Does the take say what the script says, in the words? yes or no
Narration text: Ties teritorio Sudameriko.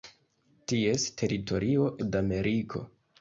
yes